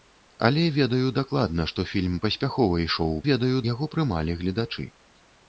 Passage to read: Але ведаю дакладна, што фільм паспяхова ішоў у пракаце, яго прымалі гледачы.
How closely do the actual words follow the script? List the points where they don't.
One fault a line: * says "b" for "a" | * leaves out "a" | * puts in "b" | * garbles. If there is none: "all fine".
* says "ведаю" for "пракаце"